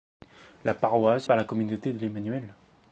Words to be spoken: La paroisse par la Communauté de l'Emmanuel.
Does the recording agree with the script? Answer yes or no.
yes